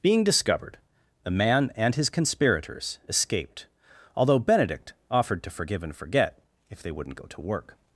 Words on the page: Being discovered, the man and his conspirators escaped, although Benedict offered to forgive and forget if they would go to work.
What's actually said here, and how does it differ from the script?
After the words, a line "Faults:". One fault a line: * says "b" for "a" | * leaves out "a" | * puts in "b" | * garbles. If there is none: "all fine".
Being discovered, the man and his conspirators escaped, although Benedict offered to forgive and forget if they wouldn't go to work.
Faults:
* says "wouldn't" for "would"